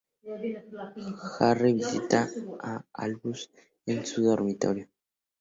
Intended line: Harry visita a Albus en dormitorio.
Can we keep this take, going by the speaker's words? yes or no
no